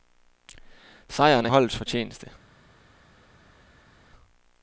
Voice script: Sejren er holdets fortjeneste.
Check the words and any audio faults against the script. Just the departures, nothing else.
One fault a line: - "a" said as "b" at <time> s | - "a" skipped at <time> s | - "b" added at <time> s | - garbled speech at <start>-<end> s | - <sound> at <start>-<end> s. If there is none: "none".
none